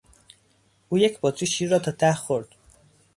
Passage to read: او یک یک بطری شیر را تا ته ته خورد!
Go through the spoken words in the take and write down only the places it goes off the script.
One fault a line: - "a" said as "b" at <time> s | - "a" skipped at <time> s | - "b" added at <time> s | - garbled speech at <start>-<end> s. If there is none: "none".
- "یک" skipped at 1.2 s
- "ته" skipped at 2.1 s